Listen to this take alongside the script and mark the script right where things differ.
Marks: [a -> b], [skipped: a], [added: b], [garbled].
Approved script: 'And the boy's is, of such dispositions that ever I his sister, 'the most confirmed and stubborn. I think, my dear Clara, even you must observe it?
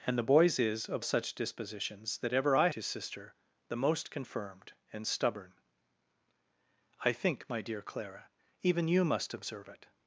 'And the boy's is, of such dispositions that ever I his sister, 'the most confirmed and stubborn. I think, my dear Clara, even you must observe it?